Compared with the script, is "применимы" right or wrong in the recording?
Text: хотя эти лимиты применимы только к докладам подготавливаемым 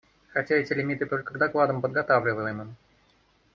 wrong